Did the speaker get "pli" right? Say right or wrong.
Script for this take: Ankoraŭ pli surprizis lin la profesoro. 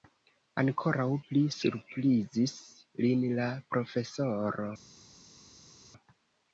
right